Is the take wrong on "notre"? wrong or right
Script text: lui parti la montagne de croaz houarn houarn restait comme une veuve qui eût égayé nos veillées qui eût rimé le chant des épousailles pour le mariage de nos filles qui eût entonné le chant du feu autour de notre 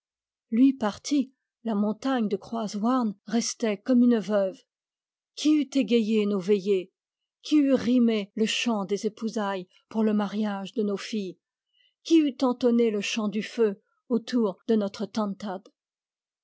right